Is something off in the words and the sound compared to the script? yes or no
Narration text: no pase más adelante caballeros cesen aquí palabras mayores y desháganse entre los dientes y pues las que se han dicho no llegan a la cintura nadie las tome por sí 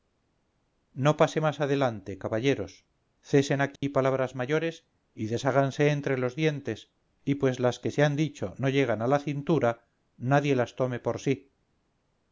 yes